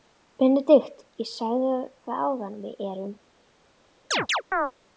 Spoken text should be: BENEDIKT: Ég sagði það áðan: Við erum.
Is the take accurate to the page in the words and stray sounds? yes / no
no